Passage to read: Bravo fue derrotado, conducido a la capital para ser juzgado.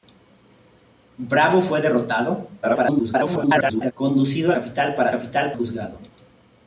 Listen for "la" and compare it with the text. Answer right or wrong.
wrong